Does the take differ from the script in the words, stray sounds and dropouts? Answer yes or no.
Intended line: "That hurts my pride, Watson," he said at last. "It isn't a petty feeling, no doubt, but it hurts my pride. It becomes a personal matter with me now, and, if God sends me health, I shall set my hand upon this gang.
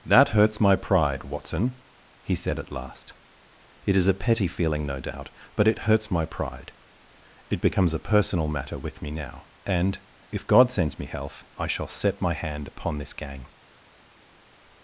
yes